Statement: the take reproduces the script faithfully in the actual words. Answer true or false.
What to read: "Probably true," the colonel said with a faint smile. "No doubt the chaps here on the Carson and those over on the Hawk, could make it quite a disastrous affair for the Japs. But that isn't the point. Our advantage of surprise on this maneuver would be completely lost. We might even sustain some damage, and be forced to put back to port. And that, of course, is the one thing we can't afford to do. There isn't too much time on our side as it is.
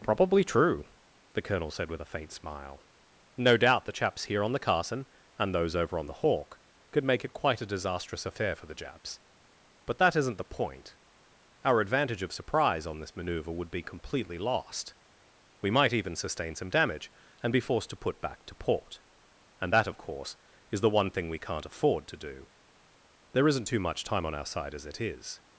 true